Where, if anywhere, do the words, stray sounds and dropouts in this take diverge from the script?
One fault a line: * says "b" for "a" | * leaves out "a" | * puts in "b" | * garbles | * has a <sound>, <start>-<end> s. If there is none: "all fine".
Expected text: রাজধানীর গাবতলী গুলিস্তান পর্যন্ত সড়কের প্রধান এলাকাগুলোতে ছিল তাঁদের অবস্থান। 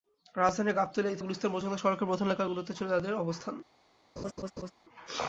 * has a laugh, 4.2-4.7 s